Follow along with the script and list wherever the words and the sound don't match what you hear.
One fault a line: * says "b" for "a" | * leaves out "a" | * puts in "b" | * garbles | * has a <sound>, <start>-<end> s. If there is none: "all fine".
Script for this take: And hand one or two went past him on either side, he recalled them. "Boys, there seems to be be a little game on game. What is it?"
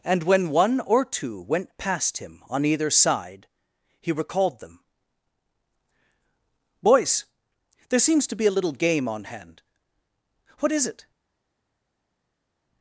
* says "when" for "hand"
* leaves out "be"
* says "hand" for "game"